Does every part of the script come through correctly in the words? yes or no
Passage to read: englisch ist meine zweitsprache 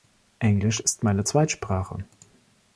yes